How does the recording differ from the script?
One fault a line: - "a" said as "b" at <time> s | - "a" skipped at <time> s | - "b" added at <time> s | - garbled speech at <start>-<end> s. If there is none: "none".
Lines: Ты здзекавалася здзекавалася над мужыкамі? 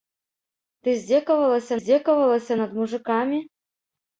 none